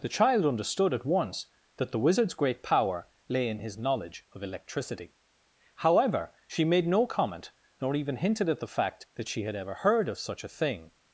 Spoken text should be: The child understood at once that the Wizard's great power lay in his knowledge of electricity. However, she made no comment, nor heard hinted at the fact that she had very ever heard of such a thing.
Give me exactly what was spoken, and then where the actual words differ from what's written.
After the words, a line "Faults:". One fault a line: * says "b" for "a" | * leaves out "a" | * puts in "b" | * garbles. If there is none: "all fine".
The child understood at once that the Wizard's great power lay in his knowledge of electricity. However, she made no comment, nor even hinted at the fact that she had ever heard of such a thing.
Faults:
* says "even" for "heard"
* leaves out "very"